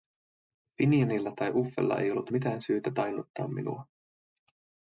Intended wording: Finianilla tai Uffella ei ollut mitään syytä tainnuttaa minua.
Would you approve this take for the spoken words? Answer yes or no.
yes